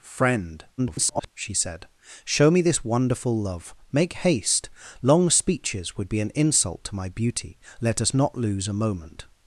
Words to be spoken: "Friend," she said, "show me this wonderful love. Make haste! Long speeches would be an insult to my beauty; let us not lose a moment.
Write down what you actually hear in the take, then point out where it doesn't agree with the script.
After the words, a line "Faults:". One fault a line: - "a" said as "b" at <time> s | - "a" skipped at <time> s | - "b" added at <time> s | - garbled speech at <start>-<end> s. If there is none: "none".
"Friend," [garbled] she said, "show me this wonderful love. Make haste! Long speeches would be an insult to my beauty; let us not lose a moment.
Faults:
- garbled speech at 0.8-1.3 s